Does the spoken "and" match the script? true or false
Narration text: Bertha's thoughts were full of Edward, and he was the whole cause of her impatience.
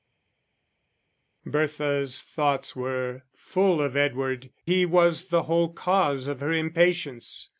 false